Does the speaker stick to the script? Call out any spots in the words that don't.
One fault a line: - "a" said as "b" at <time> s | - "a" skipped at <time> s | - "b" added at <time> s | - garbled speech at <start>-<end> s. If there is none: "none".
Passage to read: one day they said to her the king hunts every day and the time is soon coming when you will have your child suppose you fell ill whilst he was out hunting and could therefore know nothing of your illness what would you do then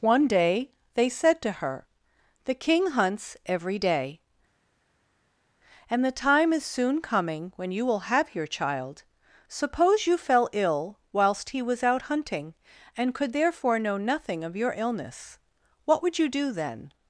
none